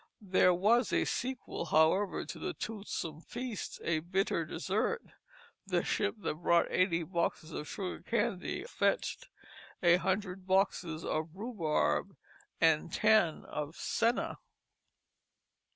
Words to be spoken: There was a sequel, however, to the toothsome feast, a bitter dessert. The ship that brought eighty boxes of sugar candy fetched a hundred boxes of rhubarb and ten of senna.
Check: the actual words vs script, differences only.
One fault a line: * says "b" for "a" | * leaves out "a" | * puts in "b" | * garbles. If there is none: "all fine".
all fine